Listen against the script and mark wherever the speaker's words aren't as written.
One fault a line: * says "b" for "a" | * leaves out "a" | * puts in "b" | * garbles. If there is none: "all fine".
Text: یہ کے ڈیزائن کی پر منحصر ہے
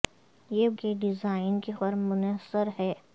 all fine